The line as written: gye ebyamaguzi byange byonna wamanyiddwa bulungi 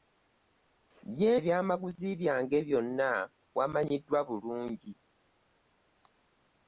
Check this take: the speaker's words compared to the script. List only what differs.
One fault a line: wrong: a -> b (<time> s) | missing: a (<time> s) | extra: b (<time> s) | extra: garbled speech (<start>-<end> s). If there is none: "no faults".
no faults